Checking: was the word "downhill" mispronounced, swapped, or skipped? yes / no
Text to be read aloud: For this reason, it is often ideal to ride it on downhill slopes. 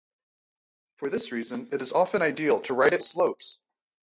yes